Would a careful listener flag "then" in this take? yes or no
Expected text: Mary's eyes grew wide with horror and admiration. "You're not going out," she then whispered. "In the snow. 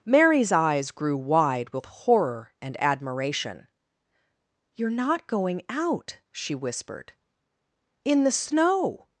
yes